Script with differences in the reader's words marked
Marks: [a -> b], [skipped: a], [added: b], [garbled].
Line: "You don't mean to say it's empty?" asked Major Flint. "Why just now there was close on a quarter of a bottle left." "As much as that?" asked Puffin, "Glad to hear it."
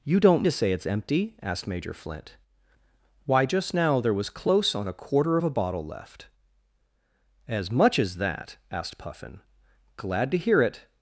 "You don't [skipped: mean] to say it's empty?" asked Major Flint. "Why just now there was close on a quarter of a bottle left." "As much as that?" asked Puffin, "Glad to hear it."